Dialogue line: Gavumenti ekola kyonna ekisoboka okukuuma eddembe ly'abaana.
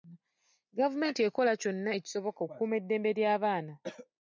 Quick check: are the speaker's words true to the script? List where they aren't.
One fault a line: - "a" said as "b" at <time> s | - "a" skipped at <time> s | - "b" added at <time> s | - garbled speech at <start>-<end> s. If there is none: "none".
none